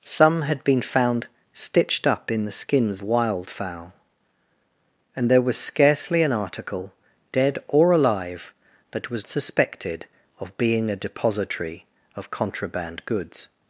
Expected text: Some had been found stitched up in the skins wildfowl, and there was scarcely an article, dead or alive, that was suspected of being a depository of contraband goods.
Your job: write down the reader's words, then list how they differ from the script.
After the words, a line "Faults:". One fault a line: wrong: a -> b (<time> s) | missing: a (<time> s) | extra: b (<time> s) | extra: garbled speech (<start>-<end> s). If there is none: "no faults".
Some had been found stitched up in the skins wildfowl, and there was scarcely an article, dead or alive, that was suspected of being a depository of contraband goods.
Faults:
no faults